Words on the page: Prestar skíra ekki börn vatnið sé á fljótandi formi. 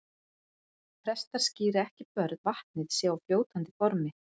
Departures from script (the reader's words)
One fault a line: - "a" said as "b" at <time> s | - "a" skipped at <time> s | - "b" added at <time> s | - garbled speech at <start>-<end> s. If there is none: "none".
none